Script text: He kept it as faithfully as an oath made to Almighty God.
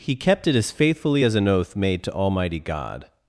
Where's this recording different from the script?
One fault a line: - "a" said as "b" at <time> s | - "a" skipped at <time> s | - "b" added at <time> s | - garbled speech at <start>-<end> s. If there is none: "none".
none